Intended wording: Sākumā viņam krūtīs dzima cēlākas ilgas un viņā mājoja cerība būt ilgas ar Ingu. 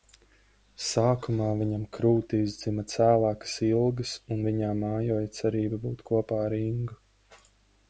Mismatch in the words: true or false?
true